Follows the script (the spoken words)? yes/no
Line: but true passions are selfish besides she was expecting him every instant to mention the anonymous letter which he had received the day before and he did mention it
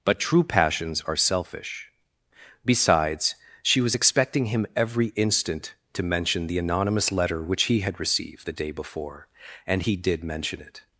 yes